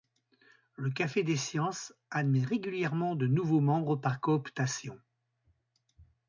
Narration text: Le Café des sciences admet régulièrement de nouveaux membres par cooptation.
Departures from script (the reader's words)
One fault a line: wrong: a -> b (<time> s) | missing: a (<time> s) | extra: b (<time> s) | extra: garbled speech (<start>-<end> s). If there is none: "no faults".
no faults